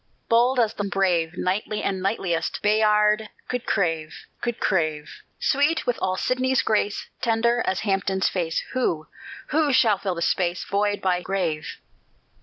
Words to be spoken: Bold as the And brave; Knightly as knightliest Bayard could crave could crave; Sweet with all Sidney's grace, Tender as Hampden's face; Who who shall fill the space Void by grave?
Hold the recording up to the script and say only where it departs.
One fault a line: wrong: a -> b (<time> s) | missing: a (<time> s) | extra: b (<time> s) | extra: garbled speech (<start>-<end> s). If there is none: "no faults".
no faults